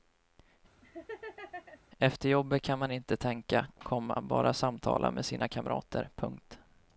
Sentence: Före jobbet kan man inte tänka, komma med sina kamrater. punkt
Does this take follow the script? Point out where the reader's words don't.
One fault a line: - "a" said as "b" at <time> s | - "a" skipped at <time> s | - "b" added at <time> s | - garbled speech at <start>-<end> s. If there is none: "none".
- "Före" said as "Efter" at 2.0 s
- "bara samtala" added at 4.2 s